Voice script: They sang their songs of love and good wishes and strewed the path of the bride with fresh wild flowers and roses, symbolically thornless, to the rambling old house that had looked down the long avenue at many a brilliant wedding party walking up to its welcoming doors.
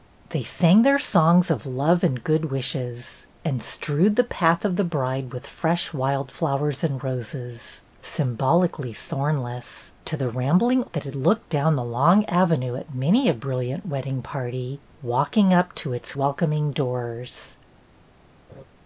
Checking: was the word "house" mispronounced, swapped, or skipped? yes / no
yes